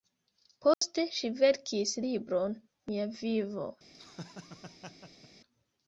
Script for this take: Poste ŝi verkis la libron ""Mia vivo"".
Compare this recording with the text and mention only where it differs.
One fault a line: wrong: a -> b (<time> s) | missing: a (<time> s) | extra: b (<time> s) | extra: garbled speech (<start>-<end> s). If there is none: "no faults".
missing: la (1.9 s)